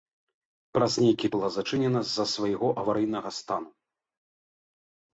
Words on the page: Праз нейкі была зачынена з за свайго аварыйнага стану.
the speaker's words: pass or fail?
pass